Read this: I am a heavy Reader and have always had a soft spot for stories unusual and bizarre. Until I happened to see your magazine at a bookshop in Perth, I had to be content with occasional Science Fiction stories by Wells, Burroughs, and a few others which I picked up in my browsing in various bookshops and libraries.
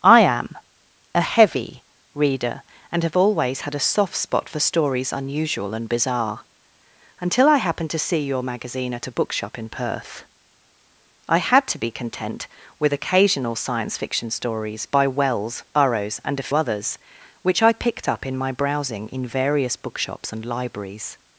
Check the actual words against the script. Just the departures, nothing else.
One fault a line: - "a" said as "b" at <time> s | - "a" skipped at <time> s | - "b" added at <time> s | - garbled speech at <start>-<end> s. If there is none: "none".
- "few" skipped at 16.5 s